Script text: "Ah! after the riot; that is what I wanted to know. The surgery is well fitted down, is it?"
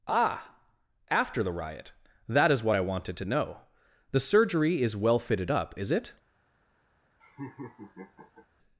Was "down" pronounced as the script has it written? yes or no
no